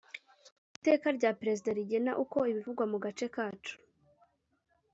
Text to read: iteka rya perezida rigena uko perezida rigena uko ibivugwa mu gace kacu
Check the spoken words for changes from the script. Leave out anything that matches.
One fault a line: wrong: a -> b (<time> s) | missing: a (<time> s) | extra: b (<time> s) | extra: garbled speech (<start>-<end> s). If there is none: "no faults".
missing: perezida rigena uko (2.4 s)